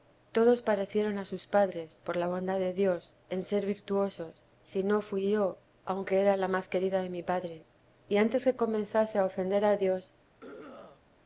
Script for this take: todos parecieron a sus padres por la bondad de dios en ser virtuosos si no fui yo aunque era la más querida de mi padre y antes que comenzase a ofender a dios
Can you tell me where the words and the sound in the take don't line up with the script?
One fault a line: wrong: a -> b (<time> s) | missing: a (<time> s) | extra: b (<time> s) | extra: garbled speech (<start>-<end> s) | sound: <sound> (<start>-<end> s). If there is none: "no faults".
sound: throat clearing (10.4-11.0 s)